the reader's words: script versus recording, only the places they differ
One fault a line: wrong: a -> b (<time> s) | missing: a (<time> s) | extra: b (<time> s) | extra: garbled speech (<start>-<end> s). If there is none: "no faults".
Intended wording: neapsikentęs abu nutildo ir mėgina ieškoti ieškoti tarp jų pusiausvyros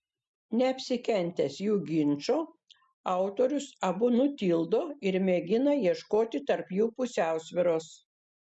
extra: jų ginčo autorius (1.6 s)
missing: ieškoti (6.5 s)